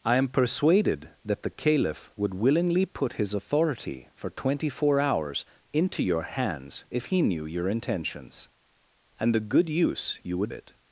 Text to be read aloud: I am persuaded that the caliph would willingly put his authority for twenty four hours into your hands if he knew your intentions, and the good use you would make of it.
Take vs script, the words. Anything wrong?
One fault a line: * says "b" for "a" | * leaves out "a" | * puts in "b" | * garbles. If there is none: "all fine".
* leaves out "make of"